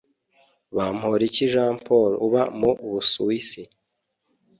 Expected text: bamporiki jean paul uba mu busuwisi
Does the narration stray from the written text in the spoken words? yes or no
no